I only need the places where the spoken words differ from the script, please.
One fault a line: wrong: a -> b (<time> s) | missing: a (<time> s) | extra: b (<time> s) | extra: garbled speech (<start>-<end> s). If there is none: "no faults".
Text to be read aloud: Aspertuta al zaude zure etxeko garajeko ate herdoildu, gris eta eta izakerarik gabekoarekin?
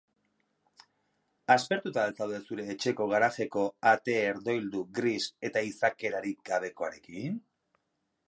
missing: eta (5.6 s)